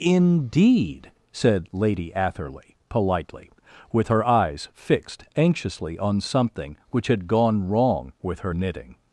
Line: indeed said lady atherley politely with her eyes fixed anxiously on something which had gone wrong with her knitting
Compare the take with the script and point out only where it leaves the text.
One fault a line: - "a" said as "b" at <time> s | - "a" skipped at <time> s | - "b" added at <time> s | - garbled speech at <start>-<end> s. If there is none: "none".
none